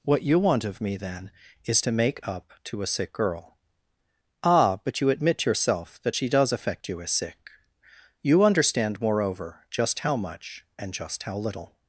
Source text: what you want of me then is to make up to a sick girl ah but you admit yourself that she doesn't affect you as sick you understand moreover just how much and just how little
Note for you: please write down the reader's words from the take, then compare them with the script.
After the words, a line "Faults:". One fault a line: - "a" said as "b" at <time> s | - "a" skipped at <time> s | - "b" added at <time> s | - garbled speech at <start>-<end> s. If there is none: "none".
what you want of me then is to make up to a sick girl ah but you admit yourself that she does affect you as sick you understand moreover just how much and just how little
Faults:
- "doesn't" said as "does" at 6.3 s